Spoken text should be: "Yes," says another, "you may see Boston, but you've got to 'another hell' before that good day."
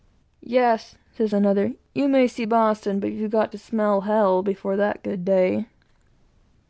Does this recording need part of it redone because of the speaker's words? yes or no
yes